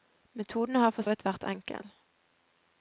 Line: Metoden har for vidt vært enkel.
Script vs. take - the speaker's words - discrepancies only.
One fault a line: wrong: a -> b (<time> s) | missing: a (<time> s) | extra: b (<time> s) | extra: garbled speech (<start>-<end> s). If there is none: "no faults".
no faults